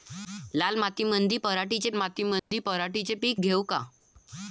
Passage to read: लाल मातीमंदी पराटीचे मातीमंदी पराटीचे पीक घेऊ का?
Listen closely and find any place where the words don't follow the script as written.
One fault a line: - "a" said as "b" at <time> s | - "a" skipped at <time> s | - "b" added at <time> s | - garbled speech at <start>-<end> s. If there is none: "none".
none